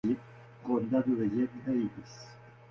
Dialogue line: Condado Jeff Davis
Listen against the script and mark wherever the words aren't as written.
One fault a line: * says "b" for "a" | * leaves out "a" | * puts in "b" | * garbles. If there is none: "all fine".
* puts in "de"